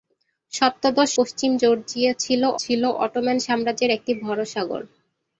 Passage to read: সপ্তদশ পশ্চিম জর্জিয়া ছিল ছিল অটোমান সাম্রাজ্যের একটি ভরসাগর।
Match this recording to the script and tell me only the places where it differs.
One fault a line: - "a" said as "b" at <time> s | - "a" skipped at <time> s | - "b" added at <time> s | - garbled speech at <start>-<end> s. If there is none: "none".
none